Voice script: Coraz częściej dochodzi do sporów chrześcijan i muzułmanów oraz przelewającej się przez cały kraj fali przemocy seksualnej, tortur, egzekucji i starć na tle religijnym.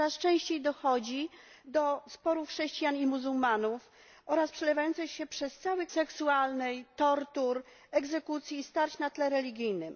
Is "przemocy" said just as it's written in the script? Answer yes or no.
no